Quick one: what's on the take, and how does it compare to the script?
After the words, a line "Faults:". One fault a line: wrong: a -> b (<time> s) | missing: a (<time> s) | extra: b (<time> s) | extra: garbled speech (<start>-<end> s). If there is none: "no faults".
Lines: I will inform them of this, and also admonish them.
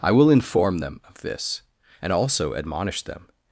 I will inform them of this, and also admonish them.
Faults:
no faults